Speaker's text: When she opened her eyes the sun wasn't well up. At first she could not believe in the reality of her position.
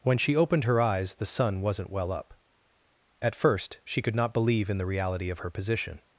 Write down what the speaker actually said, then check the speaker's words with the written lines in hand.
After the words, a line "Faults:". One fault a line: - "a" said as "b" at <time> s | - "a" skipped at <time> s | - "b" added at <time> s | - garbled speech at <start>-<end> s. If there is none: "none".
When she opened her eyes the sun wasn't well up. At first she could not believe in the reality of her position.
Faults:
none